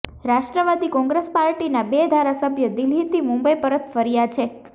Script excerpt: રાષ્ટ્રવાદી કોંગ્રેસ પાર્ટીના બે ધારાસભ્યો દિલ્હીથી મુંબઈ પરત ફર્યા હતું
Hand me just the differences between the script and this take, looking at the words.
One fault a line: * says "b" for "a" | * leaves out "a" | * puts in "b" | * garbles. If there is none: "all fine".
* says "છે" for "હતું"